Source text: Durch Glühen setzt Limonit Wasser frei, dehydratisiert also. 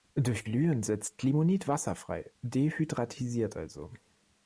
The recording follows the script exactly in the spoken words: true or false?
true